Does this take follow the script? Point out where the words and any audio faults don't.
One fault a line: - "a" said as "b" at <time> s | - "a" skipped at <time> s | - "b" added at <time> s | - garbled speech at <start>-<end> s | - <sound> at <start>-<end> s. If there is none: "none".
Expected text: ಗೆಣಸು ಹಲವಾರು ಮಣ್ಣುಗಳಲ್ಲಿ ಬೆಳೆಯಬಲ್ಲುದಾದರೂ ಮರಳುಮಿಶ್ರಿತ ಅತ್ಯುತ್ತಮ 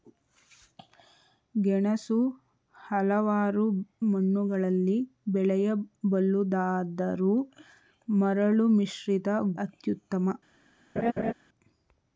- laugh at 11.0-11.3 s